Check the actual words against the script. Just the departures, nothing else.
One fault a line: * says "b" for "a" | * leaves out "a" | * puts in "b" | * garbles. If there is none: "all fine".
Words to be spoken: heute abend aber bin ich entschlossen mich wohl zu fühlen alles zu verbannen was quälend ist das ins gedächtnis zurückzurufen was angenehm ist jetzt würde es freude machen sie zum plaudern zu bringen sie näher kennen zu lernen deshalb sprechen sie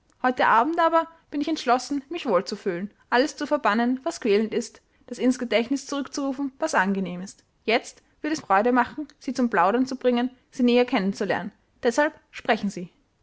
all fine